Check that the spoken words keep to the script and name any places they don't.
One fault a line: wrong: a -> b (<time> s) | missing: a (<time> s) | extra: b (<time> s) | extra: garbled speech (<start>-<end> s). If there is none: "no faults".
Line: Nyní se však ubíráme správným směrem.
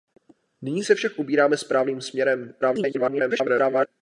extra: garbled speech (2.6-3.9 s)